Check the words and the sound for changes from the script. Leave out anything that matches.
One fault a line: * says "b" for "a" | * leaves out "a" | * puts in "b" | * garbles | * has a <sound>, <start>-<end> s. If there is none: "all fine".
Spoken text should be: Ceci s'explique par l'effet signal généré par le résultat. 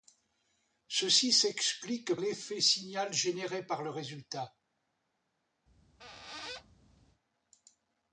* leaves out "par"
* has a squeak, 5.7-7.2 s